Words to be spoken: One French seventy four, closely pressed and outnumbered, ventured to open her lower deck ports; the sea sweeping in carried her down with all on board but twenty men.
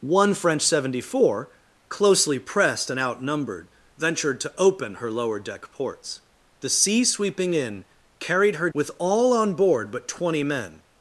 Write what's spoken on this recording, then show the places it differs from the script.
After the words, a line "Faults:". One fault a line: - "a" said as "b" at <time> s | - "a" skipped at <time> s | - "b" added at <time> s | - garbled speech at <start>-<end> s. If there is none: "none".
One French seventy four, closely pressed and outnumbered, ventured to open her lower deck ports; the sea sweeping in carried her with all on board but twenty men.
Faults:
- "down" skipped at 8.7 s